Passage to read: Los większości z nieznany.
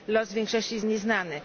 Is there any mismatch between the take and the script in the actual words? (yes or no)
no